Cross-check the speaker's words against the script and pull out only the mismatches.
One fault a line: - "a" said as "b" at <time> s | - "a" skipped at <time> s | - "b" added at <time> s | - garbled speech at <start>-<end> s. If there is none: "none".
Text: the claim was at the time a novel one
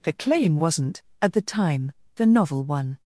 - "was" said as "wasn't" at 0.6 s
- "a" said as "the" at 2.2 s